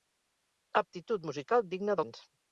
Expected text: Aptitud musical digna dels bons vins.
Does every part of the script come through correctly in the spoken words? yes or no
no